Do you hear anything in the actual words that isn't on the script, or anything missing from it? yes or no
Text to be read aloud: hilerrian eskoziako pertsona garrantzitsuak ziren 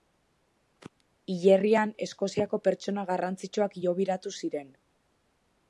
yes